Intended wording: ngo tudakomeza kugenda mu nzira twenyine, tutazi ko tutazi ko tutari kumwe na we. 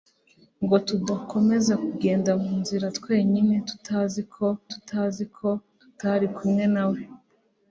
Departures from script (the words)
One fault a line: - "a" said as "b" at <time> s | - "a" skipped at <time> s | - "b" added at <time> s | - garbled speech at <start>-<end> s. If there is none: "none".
none